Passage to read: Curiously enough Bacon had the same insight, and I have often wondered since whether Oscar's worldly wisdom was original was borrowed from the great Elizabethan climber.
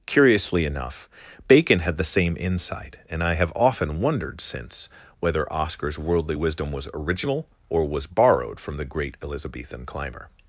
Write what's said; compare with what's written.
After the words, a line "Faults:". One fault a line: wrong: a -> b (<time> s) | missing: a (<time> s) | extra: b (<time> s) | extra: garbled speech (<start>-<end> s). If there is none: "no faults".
Curiously enough Bacon had the same insight, and I have often wondered since whether Oscar's worldly wisdom was original or was borrowed from the great Elizabethan climber.
Faults:
extra: or (7.7 s)